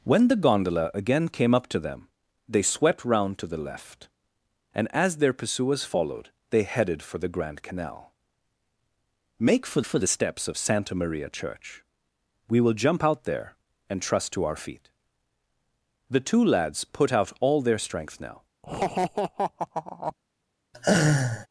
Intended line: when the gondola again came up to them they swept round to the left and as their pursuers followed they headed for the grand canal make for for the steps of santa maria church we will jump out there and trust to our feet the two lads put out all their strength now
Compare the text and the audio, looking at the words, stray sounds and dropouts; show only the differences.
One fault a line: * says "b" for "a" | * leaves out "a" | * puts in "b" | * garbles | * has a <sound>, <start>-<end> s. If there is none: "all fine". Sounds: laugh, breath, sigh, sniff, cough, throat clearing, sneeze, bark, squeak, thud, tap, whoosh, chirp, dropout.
* has a laugh, 18.6-20.1 s
* has a laugh, 20.7-21.5 s